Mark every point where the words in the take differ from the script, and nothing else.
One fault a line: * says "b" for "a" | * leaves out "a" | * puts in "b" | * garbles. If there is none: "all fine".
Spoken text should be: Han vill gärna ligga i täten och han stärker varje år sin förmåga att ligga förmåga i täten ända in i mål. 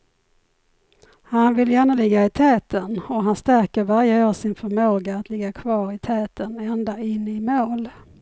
* says "kvar" for "förmåga"